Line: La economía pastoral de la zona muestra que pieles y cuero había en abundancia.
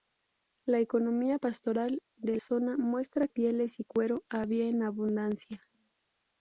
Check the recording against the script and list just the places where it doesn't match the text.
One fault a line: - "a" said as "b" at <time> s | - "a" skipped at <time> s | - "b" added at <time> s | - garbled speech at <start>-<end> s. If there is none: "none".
- "la" skipped at 2.4 s
- "que" skipped at 3.3 s